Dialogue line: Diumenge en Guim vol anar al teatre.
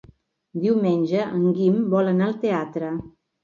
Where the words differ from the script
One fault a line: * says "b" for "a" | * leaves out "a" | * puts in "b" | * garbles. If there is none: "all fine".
all fine